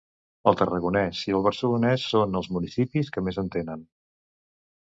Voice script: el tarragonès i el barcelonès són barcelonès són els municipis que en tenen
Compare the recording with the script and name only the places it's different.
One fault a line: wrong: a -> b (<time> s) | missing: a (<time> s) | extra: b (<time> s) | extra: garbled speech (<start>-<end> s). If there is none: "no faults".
missing: barcelonès són (2.4 s)
extra: més (3.3 s)